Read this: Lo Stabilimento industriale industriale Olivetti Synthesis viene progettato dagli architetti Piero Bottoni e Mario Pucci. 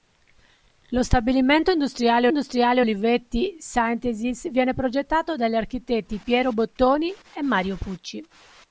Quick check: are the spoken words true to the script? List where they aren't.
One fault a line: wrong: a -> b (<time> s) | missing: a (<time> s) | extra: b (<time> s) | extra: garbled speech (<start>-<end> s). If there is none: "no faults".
no faults